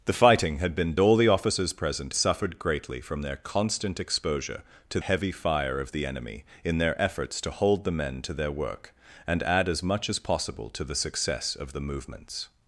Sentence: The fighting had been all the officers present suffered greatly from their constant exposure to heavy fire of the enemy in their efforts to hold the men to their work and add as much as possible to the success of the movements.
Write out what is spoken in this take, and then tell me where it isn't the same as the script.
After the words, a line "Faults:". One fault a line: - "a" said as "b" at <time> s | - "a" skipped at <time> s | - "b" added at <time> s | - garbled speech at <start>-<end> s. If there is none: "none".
The fighting had been all the officers present suffered greatly from their constant exposure to heavy fire of the enemy in their efforts to hold the men to their work and add as much as possible to the success of the movements.
Faults:
none